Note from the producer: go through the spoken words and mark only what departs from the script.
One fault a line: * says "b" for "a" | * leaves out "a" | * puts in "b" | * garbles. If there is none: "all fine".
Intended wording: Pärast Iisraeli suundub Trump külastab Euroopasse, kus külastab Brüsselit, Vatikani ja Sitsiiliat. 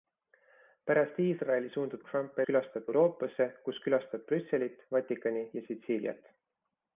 all fine